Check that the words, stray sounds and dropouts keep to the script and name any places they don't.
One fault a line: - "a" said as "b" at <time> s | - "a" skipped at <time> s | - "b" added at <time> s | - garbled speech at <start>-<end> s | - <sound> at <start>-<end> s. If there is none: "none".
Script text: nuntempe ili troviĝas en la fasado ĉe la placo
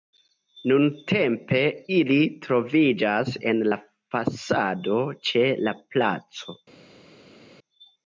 none